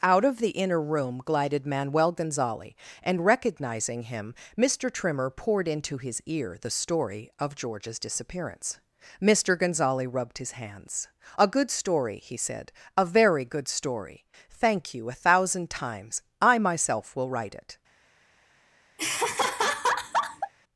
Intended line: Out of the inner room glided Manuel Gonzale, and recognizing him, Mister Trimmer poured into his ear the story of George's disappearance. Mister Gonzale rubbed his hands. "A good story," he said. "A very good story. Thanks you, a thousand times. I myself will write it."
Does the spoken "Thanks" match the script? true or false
false